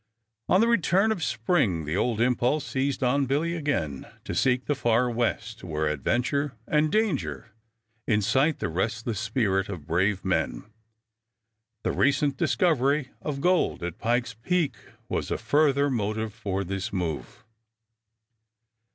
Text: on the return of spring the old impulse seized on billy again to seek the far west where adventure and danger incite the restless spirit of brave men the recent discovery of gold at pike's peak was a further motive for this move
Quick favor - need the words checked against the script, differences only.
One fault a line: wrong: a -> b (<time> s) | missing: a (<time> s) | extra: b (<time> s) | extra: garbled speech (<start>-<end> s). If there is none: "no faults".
no faults